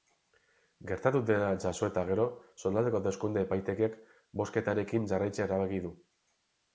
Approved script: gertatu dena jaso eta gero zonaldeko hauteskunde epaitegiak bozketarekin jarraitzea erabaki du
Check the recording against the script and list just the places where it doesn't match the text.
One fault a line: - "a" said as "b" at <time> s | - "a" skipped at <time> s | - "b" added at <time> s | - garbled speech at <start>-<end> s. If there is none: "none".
none